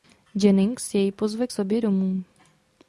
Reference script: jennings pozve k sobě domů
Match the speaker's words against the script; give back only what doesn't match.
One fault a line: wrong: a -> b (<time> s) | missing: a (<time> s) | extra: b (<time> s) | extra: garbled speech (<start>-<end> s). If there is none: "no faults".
extra: jej (0.9 s)